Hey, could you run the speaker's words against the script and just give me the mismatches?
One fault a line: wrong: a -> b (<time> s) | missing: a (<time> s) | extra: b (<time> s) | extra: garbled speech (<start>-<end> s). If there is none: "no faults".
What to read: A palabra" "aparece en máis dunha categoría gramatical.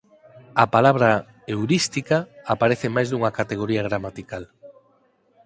extra: heurística (1.5 s)